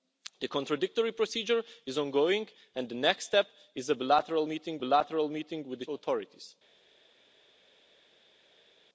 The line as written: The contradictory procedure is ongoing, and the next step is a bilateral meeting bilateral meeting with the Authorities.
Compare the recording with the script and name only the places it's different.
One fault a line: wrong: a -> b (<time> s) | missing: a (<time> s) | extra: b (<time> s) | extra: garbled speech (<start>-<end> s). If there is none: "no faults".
no faults